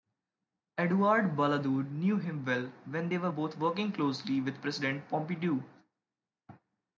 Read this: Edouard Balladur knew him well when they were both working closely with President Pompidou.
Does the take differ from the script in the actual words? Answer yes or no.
no